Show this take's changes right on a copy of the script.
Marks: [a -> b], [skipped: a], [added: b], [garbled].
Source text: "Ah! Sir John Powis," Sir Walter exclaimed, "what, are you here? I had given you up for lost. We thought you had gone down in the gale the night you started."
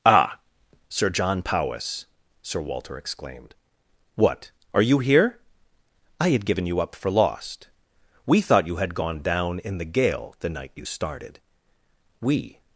"Ah! Sir John Powis," Sir Walter exclaimed, "what, are you here? I had given you up for lost. We thought you had gone down in the gale the night you started." [added: We]